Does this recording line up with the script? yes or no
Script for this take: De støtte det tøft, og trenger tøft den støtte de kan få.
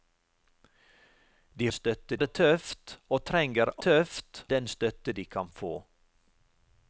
yes